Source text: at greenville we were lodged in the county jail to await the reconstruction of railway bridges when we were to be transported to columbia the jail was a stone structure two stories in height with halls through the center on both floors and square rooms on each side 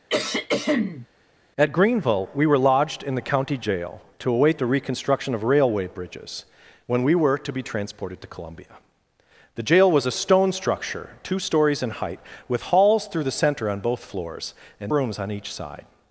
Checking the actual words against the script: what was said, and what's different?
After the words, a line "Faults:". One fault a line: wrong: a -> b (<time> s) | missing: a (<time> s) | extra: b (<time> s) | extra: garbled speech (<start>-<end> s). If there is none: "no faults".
at greenville we were lodged in the county jail to await the reconstruction of railway bridges when we were to be transported to columbia the jail was a stone structure two stories in height with halls through the center on both floors and rooms on each side
Faults:
missing: square (14.9 s)